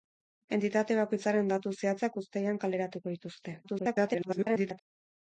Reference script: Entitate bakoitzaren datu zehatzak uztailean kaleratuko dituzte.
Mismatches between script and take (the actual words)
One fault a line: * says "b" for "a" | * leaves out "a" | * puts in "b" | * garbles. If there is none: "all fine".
* garbles